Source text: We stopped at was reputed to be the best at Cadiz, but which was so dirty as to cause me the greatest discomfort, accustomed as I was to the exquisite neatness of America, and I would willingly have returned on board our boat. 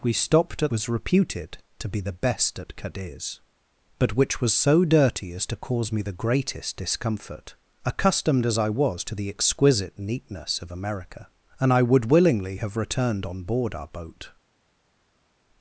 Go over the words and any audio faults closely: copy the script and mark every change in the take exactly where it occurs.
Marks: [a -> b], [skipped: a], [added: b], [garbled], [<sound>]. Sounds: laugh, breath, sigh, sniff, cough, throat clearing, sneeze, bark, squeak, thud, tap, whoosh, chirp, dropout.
We stopped at was reputed to be the best at Cadiz, but which was so dirty as to cause me the greatest discomfort, accustomed as I was to the exquisite neatness of America, and I would willingly have returned on board our boat.